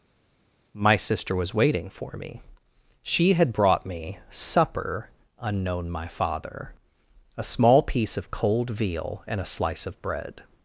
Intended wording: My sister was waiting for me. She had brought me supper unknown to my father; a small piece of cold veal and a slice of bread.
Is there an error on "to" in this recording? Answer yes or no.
yes